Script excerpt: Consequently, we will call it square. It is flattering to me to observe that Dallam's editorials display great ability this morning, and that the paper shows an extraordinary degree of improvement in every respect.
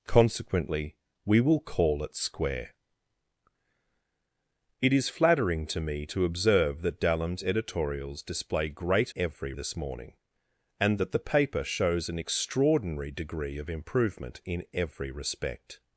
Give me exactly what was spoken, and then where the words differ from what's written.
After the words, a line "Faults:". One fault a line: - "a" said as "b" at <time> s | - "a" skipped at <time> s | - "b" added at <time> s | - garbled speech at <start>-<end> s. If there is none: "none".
Consequently, we will call it square. It is flattering to me to observe that Dallam's editorials display great every this morning, and that the paper shows an extraordinary degree of improvement in every respect.
Faults:
- "ability" said as "every" at 9.2 s